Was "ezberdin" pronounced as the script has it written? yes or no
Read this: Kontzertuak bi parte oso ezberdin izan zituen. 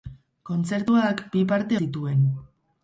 no